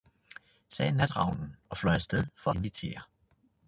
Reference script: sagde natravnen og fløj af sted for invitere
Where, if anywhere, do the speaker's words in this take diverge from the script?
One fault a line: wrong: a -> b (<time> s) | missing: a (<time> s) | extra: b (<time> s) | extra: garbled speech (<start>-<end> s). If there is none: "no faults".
no faults